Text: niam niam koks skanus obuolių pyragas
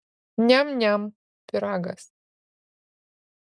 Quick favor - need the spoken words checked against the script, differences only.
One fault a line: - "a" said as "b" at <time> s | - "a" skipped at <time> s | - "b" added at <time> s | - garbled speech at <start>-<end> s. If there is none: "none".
- "koks skanus obuolių" skipped at 1.1 s